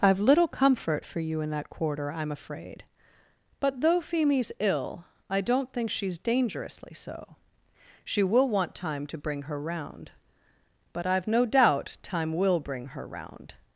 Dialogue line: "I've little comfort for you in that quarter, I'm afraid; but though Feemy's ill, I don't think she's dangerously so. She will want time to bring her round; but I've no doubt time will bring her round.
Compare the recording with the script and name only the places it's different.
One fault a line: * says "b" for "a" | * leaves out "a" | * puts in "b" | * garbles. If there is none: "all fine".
all fine